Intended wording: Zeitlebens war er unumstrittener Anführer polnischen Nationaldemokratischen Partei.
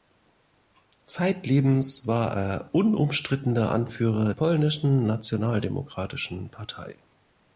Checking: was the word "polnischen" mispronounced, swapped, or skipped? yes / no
no